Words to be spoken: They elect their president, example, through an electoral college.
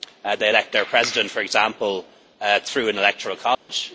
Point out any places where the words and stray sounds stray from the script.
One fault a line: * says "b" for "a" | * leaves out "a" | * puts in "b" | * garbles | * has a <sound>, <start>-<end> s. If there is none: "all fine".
* puts in "for"
* has a dropout, 3.5-3.7 s